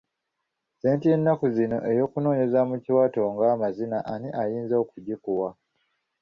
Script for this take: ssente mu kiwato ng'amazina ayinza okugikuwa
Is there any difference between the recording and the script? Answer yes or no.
yes